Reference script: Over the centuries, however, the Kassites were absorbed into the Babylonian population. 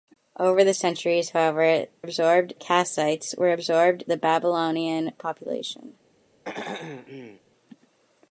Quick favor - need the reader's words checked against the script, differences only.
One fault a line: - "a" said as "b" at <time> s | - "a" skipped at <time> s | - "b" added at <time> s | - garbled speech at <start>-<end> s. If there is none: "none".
- "the" said as "absorbed" at 2.0 s
- "into" skipped at 4.0 s